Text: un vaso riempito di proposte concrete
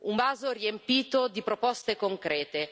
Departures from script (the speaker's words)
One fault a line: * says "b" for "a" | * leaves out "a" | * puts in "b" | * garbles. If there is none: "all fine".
all fine